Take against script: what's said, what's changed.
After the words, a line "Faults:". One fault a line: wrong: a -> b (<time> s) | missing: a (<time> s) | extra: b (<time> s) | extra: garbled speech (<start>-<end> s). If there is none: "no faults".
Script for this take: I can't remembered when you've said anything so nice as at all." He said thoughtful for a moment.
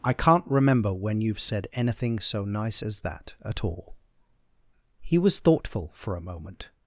I can't remember when you've said anything so nice as that at all." He was thoughtful for a moment.
Faults:
wrong: remembered -> remember (0.5 s)
extra: that (3.0 s)
wrong: said -> was (5.2 s)